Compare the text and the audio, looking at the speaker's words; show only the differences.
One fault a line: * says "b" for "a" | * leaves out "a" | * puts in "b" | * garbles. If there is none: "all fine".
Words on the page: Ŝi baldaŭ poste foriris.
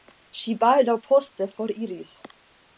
all fine